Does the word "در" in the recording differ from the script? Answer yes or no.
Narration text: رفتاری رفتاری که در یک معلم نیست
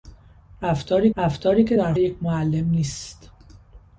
no